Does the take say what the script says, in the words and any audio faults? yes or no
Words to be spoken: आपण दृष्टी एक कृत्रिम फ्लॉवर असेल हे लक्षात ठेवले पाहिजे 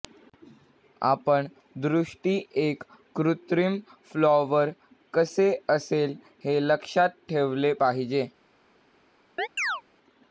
no